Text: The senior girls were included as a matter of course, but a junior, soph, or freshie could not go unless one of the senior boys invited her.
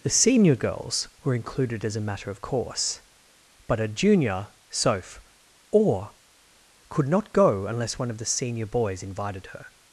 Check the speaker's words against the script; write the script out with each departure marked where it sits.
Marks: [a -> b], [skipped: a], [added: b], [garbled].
The senior girls were included as a matter of course, but a junior, soph, or [skipped: freshie] could not go unless one of the senior boys invited her.